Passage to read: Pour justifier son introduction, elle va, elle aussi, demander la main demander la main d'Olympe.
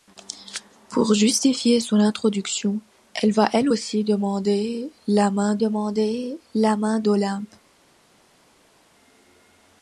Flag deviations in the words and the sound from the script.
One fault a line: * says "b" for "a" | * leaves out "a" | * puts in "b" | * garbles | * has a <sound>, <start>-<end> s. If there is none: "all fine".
all fine